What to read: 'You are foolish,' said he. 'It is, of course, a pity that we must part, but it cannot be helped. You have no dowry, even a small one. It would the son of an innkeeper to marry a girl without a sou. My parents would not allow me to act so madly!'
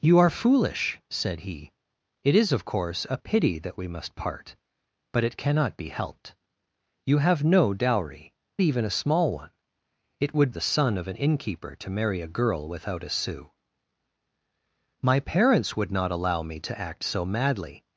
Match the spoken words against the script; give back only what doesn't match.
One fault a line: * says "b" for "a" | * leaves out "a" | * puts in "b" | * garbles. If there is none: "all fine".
all fine